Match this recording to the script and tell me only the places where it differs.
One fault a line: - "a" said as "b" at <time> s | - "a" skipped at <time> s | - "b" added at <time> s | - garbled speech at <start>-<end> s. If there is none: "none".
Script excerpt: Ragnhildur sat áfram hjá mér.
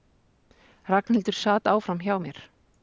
none